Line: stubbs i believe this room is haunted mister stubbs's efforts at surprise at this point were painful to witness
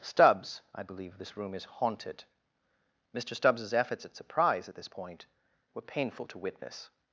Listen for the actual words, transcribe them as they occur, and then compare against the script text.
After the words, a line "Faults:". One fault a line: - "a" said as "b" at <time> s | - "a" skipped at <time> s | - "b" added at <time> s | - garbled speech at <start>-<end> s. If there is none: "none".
stubbs i believe this room is haunted mister stubbs's efforts at surprise at this point were painful to witness
Faults:
none